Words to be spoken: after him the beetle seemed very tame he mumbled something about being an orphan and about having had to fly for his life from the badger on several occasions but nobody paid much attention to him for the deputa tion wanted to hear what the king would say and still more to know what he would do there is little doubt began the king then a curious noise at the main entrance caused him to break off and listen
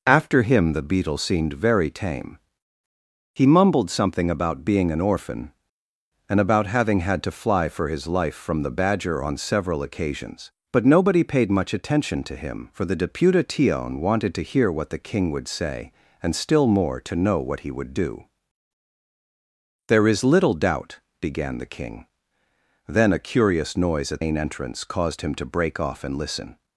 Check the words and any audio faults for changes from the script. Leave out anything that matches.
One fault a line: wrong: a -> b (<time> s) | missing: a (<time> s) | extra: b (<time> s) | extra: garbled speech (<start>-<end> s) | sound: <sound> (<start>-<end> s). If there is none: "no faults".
missing: the (24.2 s)